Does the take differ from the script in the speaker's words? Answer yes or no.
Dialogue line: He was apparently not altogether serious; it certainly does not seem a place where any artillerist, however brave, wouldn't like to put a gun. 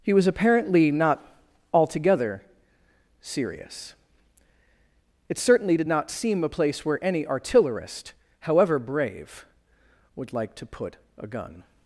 yes